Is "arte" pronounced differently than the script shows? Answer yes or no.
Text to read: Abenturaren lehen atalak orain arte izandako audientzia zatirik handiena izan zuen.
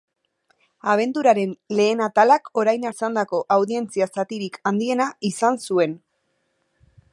yes